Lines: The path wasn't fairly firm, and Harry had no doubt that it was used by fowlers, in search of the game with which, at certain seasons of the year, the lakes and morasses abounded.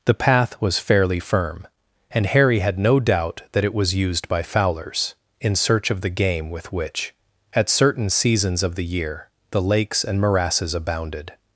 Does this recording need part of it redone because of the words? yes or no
yes